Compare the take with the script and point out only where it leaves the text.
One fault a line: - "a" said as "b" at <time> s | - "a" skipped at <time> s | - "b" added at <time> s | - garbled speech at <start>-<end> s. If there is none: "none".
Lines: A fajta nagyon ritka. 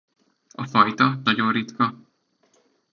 none